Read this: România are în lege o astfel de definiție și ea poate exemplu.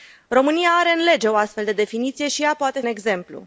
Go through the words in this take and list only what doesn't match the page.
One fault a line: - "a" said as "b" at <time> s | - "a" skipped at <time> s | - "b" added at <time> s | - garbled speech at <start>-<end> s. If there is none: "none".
none